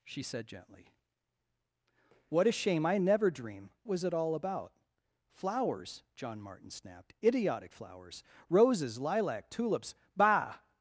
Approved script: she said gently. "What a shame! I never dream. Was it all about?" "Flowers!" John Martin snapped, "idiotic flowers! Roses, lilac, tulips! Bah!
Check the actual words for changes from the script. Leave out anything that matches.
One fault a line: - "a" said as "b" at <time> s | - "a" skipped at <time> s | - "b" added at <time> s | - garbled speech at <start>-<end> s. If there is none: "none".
none